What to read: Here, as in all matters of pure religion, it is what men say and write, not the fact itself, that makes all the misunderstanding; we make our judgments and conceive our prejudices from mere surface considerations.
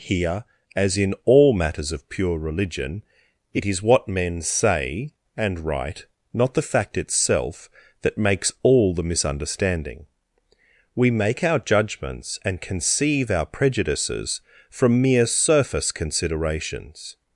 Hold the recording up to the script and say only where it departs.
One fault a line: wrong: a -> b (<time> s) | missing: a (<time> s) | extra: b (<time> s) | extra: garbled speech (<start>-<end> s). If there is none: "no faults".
no faults